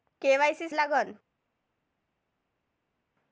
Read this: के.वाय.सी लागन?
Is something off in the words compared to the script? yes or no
no